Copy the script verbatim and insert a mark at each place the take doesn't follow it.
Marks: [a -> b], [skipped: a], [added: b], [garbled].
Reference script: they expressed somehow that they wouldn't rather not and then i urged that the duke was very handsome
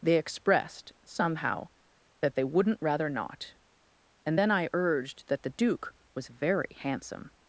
they expressed somehow that they wouldn't rather not and then i urged that the duke was very handsome